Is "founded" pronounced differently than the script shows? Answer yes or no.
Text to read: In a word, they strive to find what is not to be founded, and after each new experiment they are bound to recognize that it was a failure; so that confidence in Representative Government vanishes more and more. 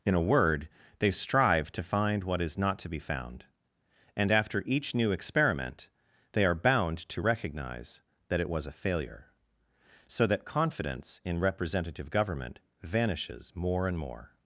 yes